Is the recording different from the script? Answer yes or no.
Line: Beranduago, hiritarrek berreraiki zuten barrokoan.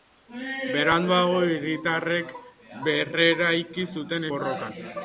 no